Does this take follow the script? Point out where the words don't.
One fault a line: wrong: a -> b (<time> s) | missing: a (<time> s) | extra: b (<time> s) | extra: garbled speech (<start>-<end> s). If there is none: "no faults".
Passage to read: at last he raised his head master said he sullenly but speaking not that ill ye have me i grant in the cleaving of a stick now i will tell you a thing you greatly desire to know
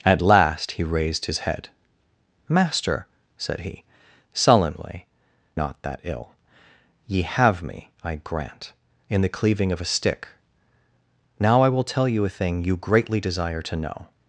missing: but speaking (5.1 s)